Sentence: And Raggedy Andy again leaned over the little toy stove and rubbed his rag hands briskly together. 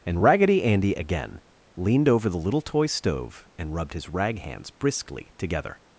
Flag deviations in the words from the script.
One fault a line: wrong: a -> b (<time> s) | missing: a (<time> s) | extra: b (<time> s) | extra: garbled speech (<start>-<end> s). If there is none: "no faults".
no faults